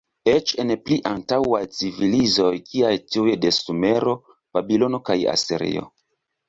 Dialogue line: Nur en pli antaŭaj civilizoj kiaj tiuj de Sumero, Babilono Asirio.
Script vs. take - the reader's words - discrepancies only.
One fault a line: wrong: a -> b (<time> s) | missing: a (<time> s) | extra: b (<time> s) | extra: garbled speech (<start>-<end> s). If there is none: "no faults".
wrong: Nur -> Eĉ (0.3 s)
extra: kaj (5.1 s)